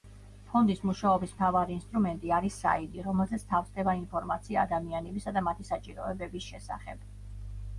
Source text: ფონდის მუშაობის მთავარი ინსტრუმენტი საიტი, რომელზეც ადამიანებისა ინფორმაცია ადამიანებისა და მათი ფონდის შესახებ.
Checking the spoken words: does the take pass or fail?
fail